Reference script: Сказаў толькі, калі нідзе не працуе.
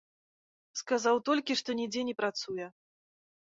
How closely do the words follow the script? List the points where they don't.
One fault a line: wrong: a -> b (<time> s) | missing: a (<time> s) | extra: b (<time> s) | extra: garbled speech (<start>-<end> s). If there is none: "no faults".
wrong: калі -> што (1.6 s)